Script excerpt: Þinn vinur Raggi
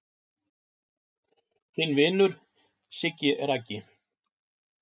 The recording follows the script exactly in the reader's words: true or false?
false